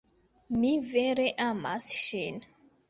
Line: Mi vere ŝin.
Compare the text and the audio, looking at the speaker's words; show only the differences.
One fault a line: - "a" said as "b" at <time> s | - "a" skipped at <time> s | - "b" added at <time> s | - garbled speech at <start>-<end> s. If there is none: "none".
- "amas" added at 1.5 s